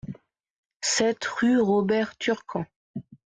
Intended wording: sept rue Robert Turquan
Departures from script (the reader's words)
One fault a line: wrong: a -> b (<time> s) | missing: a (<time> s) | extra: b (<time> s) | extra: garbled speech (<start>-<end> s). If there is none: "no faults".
no faults